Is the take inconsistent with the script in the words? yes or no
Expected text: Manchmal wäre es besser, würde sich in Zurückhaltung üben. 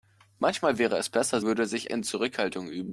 no